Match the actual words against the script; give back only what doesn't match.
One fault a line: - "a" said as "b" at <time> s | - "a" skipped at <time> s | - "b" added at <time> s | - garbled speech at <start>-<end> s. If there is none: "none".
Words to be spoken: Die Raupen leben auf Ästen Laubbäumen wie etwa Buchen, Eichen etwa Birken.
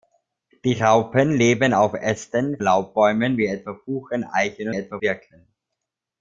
none